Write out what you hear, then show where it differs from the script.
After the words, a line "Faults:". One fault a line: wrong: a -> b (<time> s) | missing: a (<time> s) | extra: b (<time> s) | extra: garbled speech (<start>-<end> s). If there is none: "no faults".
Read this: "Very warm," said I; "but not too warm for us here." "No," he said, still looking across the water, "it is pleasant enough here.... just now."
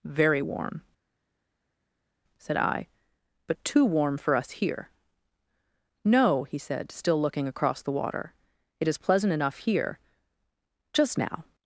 "Very warm," said I; "but too warm for us here." "No," he said, still looking across the water, "it is pleasant enough here.... just now."
Faults:
missing: not (3.6 s)